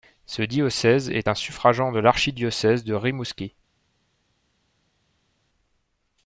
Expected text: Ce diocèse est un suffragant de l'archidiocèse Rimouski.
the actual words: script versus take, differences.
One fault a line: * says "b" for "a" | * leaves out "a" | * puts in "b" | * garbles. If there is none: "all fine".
* puts in "de"